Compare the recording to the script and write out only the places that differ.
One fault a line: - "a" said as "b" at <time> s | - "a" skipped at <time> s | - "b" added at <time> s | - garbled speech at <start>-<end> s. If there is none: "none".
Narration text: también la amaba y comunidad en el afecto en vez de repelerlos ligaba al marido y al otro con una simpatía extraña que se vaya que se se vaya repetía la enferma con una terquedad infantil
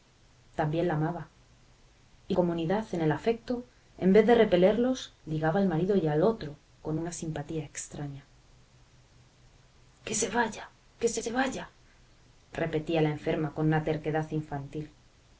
none